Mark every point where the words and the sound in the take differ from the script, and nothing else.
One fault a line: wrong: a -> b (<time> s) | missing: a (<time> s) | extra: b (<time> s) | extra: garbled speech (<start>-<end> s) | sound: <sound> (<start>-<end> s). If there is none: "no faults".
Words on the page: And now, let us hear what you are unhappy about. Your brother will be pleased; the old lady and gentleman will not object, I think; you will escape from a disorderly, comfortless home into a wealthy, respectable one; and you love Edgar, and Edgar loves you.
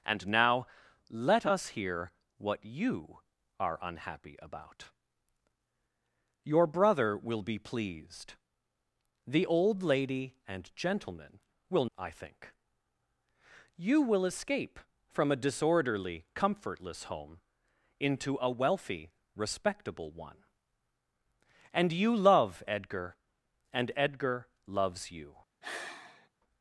missing: not object (11.8 s)
sound: sigh (25.6-26.3 s)